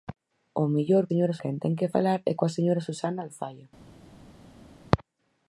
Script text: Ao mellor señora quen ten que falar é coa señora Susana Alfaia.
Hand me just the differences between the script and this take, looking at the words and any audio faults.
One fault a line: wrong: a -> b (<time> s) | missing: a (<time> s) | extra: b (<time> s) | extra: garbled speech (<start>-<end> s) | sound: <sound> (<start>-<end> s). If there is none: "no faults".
no faults